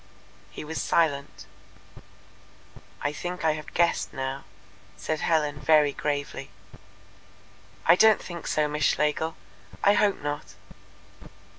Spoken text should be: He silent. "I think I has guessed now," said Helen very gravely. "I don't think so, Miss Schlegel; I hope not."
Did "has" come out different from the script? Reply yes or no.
yes